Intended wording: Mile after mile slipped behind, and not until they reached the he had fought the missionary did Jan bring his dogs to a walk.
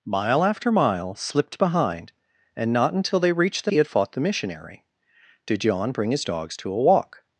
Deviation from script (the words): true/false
false